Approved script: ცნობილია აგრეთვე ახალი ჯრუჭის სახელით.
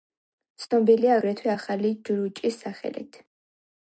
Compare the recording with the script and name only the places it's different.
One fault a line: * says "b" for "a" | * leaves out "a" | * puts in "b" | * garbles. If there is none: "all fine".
all fine